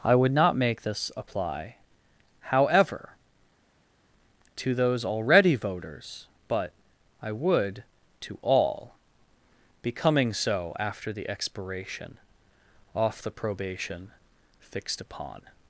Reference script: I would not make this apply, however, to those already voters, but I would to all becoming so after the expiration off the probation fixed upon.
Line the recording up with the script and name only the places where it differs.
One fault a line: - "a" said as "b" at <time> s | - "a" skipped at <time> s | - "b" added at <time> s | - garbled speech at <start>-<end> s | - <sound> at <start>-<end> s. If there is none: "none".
none